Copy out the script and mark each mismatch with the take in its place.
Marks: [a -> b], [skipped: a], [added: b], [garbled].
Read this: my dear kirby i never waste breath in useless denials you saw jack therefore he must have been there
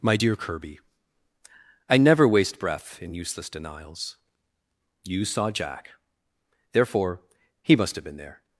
my dear kirby i never waste breath in useless denials you saw jack therefore he must have been there